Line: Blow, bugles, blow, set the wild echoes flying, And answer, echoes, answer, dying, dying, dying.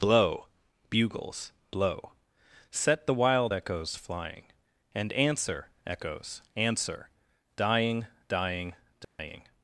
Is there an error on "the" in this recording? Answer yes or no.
no